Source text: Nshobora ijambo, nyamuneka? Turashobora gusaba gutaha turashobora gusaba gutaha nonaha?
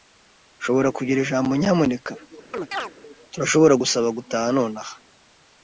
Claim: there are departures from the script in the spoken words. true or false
true